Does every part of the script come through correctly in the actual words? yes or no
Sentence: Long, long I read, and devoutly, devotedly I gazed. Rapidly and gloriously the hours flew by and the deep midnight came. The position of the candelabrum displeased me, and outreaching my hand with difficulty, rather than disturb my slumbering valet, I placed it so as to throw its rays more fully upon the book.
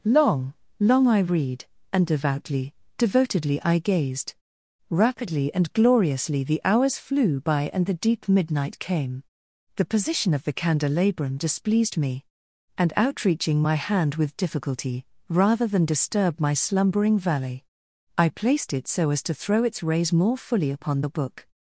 yes